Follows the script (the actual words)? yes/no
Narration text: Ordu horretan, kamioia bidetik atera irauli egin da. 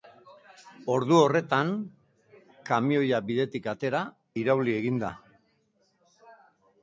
yes